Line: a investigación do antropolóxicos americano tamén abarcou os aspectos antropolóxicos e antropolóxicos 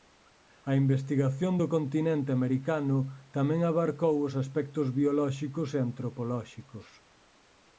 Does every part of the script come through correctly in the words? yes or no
no